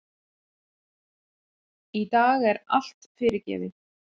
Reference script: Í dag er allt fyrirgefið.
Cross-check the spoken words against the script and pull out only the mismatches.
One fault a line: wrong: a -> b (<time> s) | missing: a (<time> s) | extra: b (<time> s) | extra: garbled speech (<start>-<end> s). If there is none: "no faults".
no faults